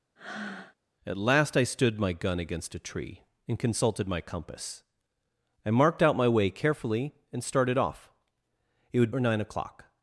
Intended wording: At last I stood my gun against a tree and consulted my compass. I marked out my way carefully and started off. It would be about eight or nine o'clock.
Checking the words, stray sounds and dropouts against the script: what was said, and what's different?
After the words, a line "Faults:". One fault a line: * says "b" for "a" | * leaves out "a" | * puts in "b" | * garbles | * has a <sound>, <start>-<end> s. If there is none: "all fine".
At last I stood my gun against a tree and consulted my compass. I marked out my way carefully and started off. It would or nine o'clock.
Faults:
* has a breath, 0.2-0.8 s
* leaves out "be about eight"